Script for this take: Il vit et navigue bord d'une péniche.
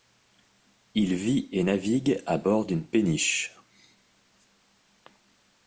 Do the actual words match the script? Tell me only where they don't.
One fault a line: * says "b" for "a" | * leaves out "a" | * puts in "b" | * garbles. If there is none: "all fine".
* puts in "à"